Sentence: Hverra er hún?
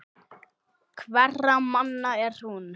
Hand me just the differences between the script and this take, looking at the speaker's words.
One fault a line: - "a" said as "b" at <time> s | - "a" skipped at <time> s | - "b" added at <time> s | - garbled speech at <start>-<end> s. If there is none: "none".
- "manna" added at 1.7 s